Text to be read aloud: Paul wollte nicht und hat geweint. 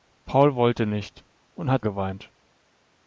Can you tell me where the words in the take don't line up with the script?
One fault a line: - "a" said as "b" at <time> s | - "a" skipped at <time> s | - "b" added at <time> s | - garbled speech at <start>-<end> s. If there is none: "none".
none